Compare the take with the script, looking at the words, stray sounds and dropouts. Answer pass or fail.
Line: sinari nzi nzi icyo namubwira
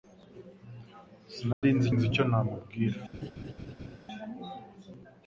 fail